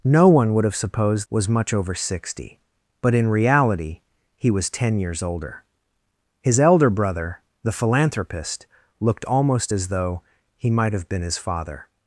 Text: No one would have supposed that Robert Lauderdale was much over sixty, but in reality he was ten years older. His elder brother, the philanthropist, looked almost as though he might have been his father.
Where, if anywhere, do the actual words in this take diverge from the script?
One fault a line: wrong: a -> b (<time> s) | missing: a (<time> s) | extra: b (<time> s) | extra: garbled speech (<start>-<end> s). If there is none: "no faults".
missing: that Robert Lauderdale (1.3 s)